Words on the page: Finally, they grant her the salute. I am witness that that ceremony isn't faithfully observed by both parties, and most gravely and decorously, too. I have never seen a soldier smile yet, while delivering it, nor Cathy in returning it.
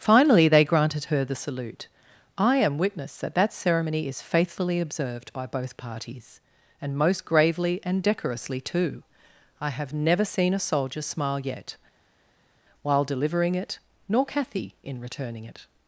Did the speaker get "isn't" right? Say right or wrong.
wrong